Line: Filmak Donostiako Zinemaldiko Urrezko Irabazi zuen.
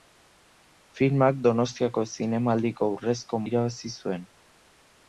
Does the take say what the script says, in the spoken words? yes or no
yes